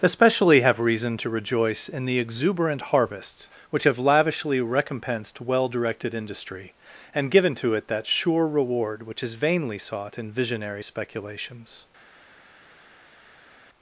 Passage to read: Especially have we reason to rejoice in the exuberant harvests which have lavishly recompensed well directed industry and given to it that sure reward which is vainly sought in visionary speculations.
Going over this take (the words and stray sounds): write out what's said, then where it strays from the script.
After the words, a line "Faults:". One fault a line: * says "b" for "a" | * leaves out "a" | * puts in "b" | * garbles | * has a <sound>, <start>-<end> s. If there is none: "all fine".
Especially have reason to rejoice in the exuberant harvests which have lavishly recompensed well directed industry and given to it that sure reward which is vainly sought in visionary speculations.
Faults:
* leaves out "we"